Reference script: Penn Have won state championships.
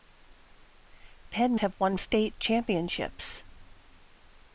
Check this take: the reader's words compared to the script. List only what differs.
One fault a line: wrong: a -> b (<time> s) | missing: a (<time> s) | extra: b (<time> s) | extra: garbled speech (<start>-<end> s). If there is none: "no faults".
no faults